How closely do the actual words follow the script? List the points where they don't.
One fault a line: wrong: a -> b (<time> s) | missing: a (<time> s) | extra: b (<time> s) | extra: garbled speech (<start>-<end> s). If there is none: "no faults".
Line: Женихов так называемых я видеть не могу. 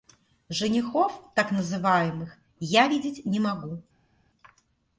no faults